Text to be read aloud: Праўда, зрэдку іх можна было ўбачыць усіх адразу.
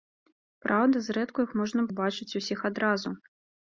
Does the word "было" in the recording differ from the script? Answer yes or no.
yes